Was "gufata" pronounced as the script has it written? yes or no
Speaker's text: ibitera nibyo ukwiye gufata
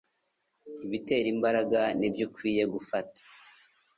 yes